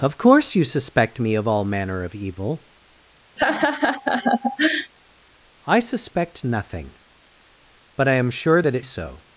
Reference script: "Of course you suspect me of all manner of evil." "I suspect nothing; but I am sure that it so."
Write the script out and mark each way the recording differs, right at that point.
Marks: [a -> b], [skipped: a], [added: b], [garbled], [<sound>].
"Of course you suspect me of all manner of evil." [laugh] "I suspect nothing; but I am sure that it so."